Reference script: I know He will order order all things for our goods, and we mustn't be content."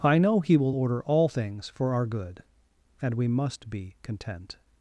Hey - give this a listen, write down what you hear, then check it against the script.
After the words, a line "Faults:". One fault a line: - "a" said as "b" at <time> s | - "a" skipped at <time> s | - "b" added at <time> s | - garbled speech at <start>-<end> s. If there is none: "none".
I know He will order all things for our good, and we must be content."
Faults:
- "order" skipped at 1.0 s
- "goods" said as "good" at 2.0 s
- "mustn't" said as "must" at 3.3 s